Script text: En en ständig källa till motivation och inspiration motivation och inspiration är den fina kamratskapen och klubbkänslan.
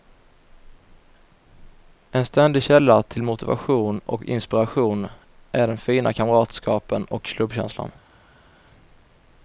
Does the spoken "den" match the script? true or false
true